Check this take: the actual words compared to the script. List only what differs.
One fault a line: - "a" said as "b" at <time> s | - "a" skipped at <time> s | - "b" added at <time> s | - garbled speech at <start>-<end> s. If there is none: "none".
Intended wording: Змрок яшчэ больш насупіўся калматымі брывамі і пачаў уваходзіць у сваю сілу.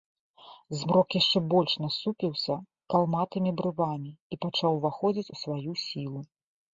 none